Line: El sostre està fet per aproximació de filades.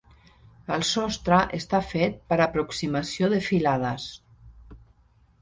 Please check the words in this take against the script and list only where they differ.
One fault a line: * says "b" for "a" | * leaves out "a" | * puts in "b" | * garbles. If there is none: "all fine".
all fine